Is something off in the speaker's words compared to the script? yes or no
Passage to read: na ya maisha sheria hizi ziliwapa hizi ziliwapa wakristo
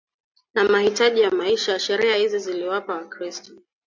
yes